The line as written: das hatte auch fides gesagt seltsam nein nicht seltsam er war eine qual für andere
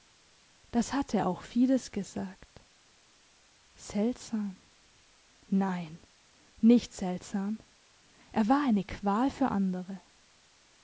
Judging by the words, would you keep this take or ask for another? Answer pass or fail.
pass